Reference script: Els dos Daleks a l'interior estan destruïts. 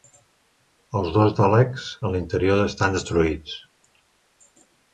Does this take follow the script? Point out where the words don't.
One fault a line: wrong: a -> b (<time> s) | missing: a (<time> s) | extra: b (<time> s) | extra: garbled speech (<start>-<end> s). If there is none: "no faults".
no faults